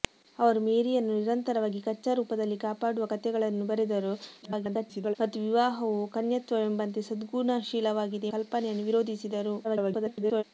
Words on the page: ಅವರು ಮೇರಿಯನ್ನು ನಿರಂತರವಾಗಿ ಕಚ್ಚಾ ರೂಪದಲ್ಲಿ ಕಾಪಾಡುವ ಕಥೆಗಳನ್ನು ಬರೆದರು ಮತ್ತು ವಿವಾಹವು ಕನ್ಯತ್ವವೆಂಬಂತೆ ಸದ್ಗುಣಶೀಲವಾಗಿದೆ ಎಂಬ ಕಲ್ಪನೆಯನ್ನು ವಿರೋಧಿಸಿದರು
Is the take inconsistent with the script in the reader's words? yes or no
yes